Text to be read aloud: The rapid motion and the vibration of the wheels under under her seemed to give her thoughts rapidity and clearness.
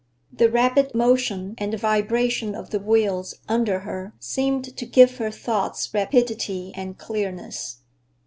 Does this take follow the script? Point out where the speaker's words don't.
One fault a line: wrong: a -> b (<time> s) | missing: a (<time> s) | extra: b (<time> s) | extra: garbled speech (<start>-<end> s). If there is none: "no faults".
missing: under (3.8 s)